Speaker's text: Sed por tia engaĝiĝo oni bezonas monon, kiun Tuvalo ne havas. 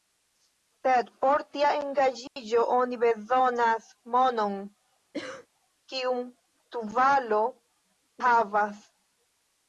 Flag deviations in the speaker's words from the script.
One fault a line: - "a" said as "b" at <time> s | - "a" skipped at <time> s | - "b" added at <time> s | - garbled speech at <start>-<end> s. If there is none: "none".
- "ne" skipped at 7.4 s